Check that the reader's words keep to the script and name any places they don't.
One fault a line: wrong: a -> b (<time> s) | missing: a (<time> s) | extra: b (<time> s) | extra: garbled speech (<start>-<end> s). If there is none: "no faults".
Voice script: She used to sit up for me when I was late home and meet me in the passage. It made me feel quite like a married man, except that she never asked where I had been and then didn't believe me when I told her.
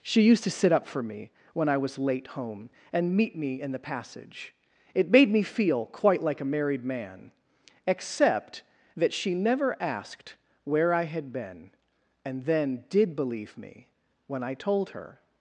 wrong: didn't -> did (12.9 s)